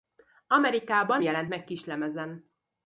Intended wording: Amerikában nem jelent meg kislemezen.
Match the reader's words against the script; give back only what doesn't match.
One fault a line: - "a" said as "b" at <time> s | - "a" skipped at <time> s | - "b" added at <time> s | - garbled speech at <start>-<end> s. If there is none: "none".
- "nem" skipped at 1.2 s